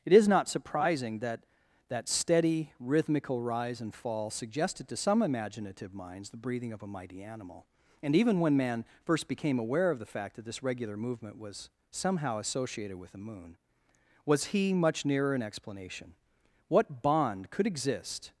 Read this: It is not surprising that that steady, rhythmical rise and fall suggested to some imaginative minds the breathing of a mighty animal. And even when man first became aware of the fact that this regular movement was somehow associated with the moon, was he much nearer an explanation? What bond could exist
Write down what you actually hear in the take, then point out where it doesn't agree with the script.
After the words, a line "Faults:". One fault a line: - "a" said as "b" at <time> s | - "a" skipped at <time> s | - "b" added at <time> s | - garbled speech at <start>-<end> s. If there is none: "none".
It is not surprising that that steady, rhythmical rise and fall suggested to some imaginative minds the breathing of a mighty animal. And even when man first became aware of the fact that this regular movement was somehow associated with the moon, was he much nearer an explanation? What bond could exist
Faults:
none